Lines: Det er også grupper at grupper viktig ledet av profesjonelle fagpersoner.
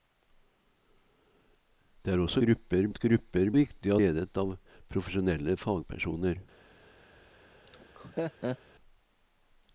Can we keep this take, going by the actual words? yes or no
yes